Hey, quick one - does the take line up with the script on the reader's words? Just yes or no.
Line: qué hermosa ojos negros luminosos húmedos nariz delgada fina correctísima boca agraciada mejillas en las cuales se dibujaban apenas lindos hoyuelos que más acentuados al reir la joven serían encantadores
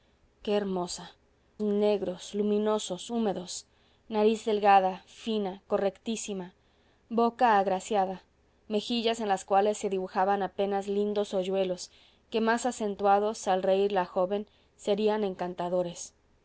no